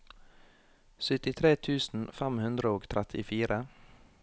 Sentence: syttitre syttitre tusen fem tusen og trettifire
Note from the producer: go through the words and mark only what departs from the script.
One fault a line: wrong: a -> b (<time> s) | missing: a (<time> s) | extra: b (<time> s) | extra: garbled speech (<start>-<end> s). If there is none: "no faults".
missing: syttitre (1.5 s)
wrong: tusen -> hundre (2.5 s)